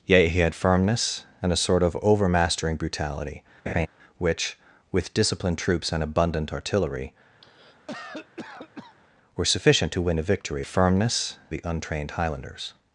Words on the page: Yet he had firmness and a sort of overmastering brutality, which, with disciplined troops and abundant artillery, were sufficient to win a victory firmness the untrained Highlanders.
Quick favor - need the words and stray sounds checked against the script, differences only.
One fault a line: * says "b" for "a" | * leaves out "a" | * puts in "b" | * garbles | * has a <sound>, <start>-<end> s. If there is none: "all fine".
* has a laugh, 3.7-3.9 s
* has a cough, 7.4-9.0 s